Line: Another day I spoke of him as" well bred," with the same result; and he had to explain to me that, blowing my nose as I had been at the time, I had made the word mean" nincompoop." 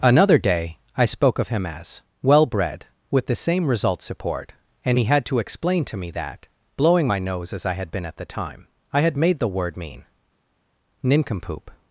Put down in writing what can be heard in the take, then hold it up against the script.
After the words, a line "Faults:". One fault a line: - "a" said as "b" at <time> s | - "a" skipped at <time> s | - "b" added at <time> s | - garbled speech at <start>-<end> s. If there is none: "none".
Another day I spoke of him as" well bred," with the same result; support and he had to explain to me that, blowing my nose as I had been at the time, I had made the word mean" nincompoop."
Faults:
- "support" added at 4.0 s